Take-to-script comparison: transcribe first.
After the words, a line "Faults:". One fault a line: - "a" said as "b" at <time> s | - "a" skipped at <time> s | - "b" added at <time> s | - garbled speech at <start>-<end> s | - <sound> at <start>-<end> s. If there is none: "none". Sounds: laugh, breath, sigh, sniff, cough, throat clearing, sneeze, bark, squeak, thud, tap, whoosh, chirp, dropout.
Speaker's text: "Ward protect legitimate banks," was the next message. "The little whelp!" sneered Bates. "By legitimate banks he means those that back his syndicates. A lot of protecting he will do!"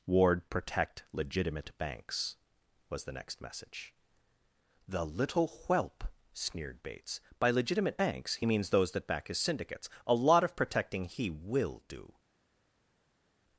"Ward protect legitimate banks," was the next message. "The little whelp!" sneered Bates. "By legitimate banks he means those that back his syndicates. A lot of protecting he will do!"
Faults:
none